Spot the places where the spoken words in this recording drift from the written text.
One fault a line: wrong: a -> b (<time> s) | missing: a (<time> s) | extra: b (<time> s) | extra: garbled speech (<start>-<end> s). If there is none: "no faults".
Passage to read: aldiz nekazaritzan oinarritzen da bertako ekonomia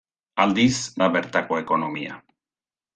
missing: nekazaritzan oinarritzen (0.8 s)